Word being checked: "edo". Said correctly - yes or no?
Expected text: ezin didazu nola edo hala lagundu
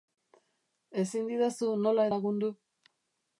no